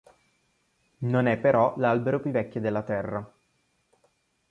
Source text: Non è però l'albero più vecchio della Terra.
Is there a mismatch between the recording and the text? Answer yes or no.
no